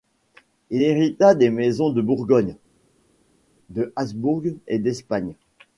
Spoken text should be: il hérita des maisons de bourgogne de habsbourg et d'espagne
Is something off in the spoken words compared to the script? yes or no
no